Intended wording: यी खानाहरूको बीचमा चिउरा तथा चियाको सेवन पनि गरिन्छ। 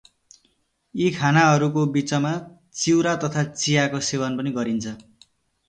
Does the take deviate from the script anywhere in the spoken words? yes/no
no